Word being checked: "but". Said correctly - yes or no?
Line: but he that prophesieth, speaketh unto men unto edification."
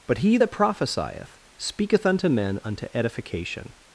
yes